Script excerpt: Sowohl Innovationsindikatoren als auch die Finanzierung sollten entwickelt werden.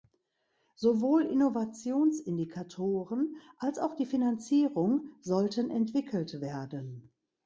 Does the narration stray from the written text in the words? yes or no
no